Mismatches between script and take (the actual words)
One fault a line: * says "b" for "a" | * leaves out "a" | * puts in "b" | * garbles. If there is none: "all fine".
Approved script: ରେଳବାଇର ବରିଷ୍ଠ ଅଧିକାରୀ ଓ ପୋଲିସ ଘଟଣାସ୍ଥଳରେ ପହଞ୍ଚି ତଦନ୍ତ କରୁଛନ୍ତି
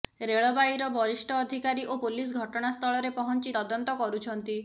all fine